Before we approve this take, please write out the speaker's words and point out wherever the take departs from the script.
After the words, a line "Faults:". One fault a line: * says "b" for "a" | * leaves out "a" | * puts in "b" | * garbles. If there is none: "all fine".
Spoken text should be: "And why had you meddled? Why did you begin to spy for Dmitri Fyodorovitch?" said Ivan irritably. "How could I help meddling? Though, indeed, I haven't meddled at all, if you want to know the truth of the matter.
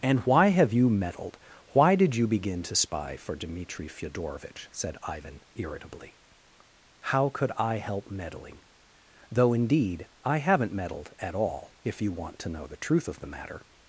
"And why have you meddled? Why did you begin to spy for Dmitri Fyodorovitch?" said Ivan irritably. "How could I help meddling? Though, indeed, I haven't meddled at all, if you want to know the truth of the matter.
Faults:
* says "have" for "had"